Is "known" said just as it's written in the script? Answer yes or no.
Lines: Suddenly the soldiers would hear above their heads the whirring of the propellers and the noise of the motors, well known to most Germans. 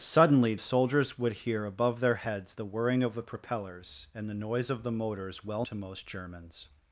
no